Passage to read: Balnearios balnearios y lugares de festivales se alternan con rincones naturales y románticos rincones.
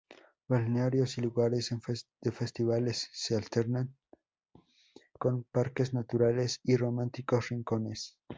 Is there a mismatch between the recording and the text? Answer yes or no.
yes